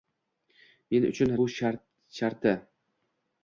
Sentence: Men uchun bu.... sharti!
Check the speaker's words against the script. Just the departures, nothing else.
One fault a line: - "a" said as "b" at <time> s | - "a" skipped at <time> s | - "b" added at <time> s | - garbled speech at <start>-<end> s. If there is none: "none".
none